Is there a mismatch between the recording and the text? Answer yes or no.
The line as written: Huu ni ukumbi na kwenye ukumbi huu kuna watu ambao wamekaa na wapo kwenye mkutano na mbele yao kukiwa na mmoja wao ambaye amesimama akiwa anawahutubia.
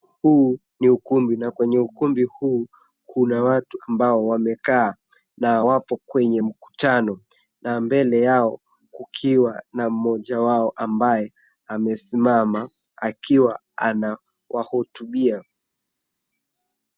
no